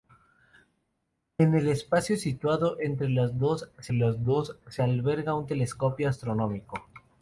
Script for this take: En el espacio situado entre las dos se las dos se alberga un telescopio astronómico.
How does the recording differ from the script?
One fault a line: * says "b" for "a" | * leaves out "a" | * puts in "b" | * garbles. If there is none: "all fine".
all fine